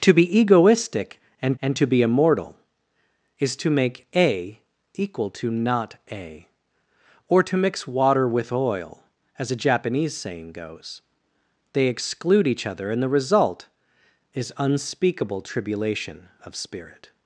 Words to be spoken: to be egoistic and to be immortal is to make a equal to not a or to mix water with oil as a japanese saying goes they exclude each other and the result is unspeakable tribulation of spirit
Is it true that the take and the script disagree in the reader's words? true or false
true